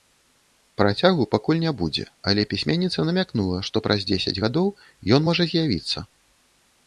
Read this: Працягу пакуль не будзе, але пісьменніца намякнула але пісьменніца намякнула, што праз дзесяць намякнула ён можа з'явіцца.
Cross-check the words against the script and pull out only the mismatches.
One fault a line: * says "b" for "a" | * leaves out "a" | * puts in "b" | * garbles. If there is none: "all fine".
* leaves out "але пісьменніца намякнула"
* says "гадоў" for "намякнула"